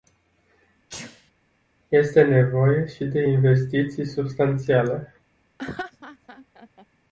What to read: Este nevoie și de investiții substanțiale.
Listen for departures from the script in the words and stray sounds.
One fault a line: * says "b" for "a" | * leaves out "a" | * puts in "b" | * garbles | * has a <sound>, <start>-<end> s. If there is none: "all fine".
* has a sneeze, 0.9-1.3 s
* has a laugh, 5.6-6.9 s